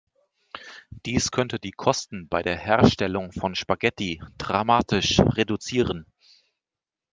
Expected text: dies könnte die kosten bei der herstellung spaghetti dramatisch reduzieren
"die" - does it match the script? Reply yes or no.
yes